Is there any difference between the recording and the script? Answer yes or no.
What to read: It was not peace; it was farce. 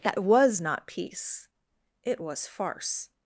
yes